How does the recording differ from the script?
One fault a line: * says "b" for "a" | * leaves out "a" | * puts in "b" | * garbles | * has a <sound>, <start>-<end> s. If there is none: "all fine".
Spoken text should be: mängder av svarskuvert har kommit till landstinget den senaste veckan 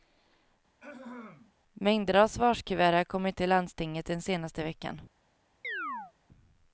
* has a throat clearing, 0.8-1.5 s
* has a chirp, 5.6-6.1 s